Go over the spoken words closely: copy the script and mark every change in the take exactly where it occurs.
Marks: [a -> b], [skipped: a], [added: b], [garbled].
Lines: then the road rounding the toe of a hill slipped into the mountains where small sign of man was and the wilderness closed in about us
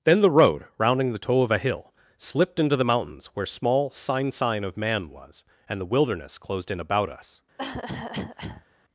then the road rounding the toe of a hill slipped into the mountains where small sign [added: sign] of man was and the wilderness closed in about us